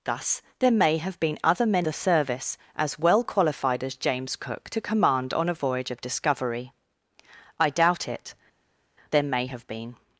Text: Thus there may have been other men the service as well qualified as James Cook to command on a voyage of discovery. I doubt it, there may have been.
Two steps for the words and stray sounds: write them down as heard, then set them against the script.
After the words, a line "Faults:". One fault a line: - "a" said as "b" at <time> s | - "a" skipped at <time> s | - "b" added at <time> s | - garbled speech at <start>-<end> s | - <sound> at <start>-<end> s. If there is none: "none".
Thus there may have been other men the service as well qualified as James Cook to command on a voyage of discovery. I doubt it, there may have been.
Faults:
none